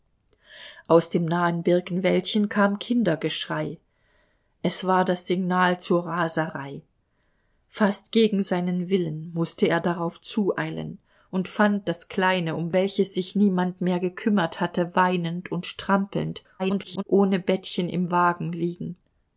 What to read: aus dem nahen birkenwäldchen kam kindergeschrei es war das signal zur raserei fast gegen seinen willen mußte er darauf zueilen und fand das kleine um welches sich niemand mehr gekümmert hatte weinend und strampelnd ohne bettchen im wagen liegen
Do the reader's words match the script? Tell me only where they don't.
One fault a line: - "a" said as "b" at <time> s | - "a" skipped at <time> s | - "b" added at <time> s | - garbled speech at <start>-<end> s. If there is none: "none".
- garbled speech at 16.6-17.0 s